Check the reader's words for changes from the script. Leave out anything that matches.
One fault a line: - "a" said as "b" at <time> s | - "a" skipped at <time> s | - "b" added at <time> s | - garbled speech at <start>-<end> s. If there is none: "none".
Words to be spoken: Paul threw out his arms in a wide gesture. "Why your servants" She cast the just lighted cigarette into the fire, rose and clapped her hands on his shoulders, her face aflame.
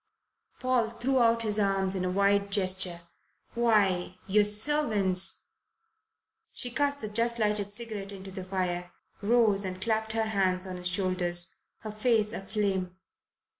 none